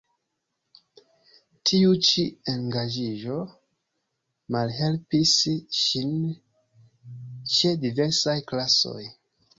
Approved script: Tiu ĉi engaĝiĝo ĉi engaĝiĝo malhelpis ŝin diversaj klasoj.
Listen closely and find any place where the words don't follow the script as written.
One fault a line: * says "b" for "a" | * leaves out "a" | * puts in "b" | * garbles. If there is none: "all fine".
* leaves out "ĉi engaĝiĝo"
* puts in "ĉe"